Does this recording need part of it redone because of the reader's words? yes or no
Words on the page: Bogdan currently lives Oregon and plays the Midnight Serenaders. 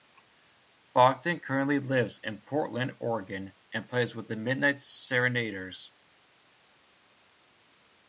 yes